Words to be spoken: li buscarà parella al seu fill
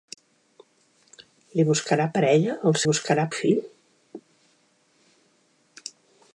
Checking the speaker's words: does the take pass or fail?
fail